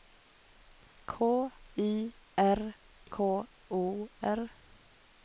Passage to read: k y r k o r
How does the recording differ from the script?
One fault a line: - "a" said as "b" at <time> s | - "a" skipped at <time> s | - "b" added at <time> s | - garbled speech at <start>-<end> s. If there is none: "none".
none